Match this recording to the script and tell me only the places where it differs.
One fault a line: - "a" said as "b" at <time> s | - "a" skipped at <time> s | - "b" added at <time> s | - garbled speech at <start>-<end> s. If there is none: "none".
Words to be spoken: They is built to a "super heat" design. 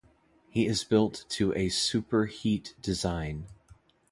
- "They" said as "He" at 0.5 s